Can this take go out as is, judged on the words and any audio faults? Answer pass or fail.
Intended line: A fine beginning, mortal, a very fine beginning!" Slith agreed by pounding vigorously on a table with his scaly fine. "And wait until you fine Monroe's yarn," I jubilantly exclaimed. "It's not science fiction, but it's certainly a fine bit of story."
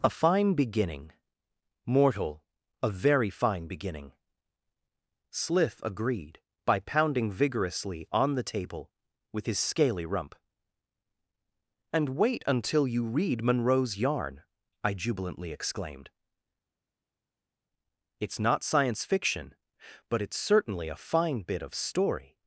fail